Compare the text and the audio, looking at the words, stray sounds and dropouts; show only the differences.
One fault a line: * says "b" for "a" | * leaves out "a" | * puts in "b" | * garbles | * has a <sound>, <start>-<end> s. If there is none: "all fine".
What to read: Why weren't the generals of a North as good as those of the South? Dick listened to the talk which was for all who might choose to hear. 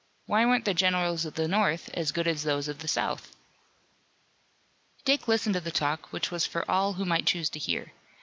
* says "the" for "a"